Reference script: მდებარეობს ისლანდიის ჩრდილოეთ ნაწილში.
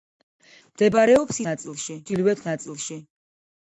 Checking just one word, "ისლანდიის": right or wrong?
wrong